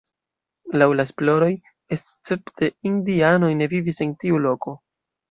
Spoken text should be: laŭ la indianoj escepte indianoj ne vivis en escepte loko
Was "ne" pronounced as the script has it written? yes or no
yes